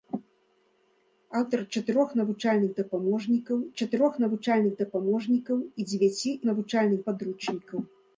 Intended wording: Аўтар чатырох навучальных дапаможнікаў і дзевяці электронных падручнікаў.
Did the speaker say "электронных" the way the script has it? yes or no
no